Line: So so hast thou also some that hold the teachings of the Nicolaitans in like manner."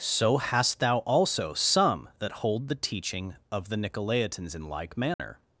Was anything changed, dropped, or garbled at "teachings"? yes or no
yes